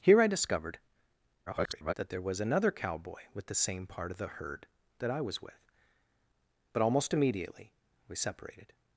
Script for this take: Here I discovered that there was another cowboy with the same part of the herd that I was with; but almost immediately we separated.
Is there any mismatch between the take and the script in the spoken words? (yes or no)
yes